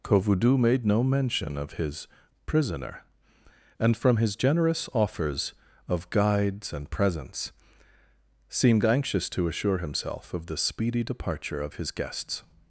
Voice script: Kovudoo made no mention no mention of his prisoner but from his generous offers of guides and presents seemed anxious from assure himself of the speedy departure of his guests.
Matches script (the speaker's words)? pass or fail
fail